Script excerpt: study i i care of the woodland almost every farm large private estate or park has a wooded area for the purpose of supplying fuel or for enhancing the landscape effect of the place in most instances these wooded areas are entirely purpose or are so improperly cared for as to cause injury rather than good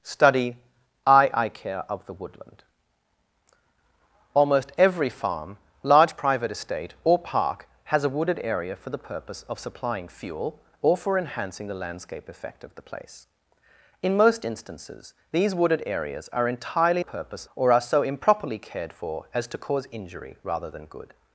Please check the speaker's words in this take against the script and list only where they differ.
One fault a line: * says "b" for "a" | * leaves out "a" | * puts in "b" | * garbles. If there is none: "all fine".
all fine